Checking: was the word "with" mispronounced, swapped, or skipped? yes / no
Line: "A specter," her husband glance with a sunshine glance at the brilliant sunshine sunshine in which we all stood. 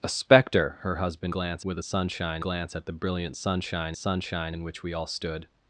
no